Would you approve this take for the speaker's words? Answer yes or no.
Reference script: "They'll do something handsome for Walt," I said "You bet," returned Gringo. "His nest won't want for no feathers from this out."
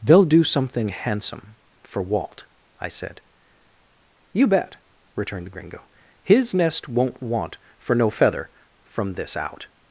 no